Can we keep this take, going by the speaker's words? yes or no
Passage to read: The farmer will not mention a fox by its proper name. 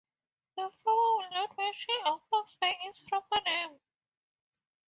yes